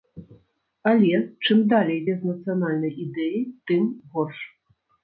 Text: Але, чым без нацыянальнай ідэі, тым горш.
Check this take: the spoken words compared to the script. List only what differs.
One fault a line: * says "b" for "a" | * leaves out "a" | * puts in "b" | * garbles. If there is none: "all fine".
* puts in "далей"